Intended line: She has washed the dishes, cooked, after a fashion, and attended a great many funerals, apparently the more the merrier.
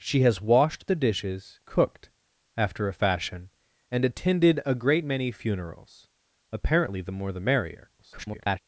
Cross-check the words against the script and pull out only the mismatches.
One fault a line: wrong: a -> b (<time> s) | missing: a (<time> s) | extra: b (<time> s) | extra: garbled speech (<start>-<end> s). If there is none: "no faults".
extra: garbled speech (8.0-8.6 s)